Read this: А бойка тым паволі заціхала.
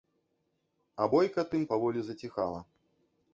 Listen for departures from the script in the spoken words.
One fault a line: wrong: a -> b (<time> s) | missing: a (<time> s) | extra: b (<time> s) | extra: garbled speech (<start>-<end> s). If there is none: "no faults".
no faults